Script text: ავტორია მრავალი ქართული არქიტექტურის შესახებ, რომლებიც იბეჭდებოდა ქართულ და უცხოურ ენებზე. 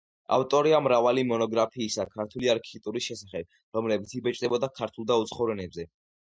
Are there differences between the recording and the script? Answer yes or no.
yes